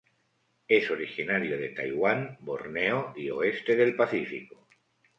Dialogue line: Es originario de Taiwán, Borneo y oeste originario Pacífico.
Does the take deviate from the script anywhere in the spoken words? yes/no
yes